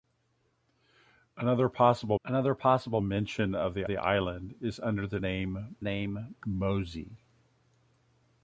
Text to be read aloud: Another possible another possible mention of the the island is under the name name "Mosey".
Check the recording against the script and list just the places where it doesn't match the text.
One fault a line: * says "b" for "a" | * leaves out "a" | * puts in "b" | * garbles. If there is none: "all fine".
all fine